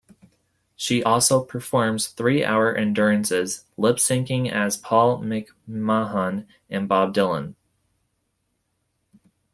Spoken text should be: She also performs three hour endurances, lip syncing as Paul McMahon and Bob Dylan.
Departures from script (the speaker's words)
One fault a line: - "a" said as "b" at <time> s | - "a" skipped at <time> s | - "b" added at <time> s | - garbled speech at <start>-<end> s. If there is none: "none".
none